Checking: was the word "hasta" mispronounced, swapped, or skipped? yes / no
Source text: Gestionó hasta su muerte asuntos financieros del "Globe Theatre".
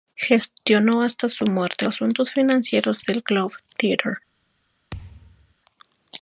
no